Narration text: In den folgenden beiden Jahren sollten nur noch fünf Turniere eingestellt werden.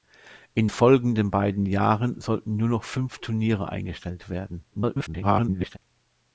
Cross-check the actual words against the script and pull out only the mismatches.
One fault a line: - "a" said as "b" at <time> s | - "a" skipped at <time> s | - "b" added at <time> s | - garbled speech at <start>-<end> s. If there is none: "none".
- "den" skipped at 0.7 s
- garbled speech at 4.7-5.8 s